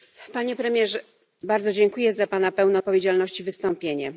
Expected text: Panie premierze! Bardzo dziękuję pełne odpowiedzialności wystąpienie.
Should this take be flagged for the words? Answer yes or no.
yes